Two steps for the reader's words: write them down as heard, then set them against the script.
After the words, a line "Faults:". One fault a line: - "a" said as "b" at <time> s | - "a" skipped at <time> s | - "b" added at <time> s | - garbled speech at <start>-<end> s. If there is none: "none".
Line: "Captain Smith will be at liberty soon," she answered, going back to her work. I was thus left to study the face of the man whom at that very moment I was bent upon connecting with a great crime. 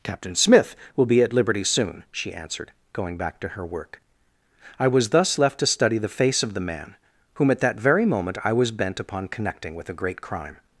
"Captain Smith will be at liberty soon," she answered, going back to her work. I was thus left to study the face of the man whom at that very moment I was bent upon connecting with a great crime.
Faults:
none